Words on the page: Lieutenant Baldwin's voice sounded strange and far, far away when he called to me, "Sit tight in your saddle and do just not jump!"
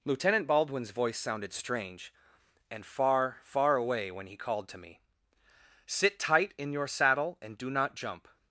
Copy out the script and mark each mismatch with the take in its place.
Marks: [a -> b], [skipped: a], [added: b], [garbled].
Lieutenant Baldwin's voice sounded strange and far, far away when he called to me, "Sit tight in your saddle and do [skipped: just] not jump!"